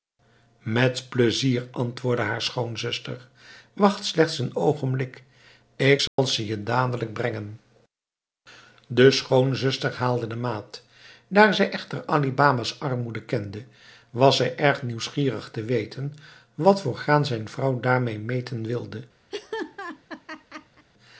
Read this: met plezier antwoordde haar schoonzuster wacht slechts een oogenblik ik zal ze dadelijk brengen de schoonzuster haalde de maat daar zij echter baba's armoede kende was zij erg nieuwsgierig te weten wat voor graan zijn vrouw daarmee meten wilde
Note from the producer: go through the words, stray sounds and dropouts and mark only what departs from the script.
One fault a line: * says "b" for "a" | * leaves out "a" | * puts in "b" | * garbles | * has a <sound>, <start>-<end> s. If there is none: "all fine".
* has a dropout, 6.1-6.2 s
* puts in "je"
* puts in "ali"
* has a laugh, 19.3-20.9 s